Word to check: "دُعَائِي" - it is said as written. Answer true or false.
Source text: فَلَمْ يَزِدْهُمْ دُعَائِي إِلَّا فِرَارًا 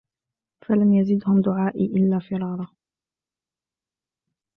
true